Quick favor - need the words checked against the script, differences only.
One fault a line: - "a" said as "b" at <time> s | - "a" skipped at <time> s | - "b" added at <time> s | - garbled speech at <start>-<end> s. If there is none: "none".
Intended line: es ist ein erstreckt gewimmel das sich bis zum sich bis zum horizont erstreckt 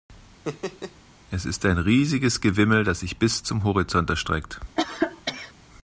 - "erstreckt" said as "riesiges" at 1.8 s
- "sich bis zum" skipped at 3.6 s